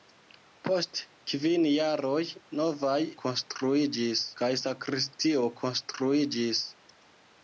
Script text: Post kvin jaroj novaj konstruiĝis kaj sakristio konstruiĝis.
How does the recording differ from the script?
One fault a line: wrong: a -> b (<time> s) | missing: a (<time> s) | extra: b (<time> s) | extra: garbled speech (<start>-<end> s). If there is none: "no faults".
no faults